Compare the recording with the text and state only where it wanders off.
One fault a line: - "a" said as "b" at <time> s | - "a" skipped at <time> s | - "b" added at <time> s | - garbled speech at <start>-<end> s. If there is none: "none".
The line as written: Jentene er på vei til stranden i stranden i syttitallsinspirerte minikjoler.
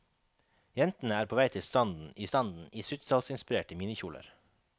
none